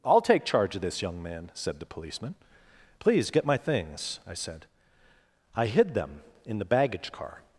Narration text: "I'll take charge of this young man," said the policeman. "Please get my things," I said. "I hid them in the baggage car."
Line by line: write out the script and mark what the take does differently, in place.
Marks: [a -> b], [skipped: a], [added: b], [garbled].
"I'll take charge of this young man," said the policeman. "Please get my things," I said. "I hid them in the baggage car."